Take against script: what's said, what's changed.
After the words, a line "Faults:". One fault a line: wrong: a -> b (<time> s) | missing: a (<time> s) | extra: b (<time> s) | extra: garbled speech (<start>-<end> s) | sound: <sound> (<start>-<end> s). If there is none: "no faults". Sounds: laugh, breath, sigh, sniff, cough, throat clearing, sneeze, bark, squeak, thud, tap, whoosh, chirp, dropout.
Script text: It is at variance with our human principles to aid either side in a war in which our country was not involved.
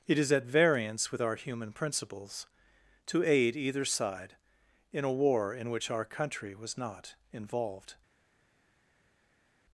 It is at variance with our human principles to aid either side in a war in which our country was not involved.
Faults:
no faults